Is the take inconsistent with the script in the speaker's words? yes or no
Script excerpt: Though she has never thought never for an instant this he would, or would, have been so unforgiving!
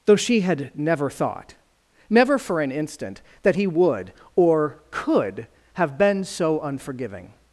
yes